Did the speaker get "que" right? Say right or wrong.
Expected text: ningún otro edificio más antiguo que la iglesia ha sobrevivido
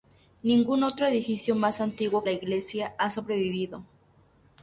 wrong